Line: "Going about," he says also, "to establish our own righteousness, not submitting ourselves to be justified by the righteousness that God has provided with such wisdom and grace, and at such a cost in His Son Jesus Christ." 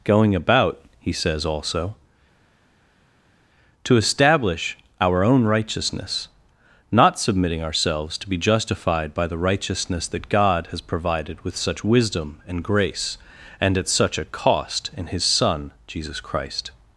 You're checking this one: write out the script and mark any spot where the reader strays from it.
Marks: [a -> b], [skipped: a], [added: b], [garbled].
"Going about," he says also, "to establish our own righteousness, not submitting ourselves to be justified by the righteousness that God has provided with such wisdom and grace, and at such a cost in His Son Jesus Christ."